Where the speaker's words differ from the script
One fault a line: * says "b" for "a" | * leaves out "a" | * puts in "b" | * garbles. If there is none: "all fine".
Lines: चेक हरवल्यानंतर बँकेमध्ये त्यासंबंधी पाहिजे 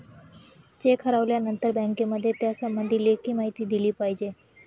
* puts in "लेखी माहिती दिली"